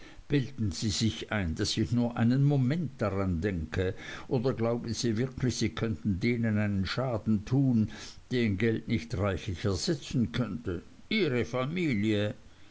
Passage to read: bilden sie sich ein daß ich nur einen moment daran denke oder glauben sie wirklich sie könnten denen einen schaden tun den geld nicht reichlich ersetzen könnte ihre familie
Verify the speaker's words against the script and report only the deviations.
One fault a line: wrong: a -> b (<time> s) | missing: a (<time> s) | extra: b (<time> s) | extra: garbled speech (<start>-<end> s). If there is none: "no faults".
no faults